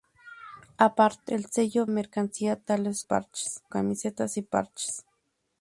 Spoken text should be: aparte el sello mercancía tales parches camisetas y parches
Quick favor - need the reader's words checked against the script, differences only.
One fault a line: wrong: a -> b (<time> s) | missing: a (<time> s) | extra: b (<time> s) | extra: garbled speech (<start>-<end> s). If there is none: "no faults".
no faults